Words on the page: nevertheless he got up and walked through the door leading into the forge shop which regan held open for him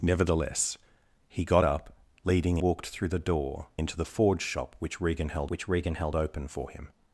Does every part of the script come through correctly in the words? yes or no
no